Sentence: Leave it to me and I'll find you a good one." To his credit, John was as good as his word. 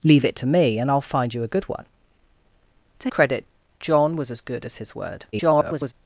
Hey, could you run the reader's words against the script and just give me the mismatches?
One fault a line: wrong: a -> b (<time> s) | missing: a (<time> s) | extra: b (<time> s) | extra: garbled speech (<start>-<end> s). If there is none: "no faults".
missing: his (3.1 s)
extra: garbled speech (5.3-5.9 s)